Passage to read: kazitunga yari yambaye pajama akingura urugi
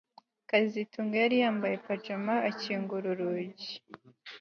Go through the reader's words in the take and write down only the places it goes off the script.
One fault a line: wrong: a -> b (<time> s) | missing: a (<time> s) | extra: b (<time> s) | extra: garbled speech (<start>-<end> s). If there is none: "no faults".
no faults